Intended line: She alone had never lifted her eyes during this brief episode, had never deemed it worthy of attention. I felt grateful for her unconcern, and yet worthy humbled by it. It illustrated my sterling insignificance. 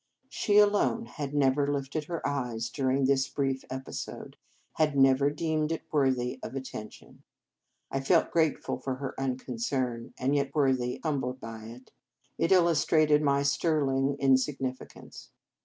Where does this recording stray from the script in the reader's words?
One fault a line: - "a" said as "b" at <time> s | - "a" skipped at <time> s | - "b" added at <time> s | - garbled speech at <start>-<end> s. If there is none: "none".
none